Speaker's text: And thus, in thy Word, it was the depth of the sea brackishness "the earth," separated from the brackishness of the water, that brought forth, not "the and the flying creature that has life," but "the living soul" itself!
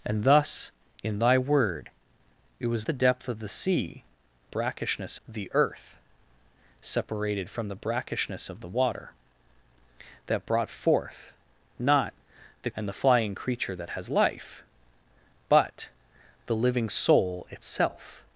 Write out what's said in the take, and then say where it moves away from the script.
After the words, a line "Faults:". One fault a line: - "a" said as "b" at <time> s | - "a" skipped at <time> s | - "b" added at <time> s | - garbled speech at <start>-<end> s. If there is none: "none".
And thus, in thy Word, it was the depth of the sea brackishness "the earth," separated from the brackishness of the water, that brought forth, not "the and the flying creature that has life," but "the living soul" itself!
Faults:
none